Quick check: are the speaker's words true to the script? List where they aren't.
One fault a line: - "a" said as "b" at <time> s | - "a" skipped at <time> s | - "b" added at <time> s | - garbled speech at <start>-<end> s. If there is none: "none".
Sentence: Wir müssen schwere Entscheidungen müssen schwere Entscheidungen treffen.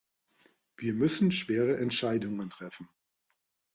- "müssen schwere Entscheidungen" skipped at 2.5 s